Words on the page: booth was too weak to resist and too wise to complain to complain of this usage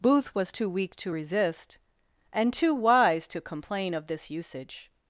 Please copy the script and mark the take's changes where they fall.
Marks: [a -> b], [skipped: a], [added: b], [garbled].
booth was too weak to resist and too wise to complain [skipped: to complain] of this usage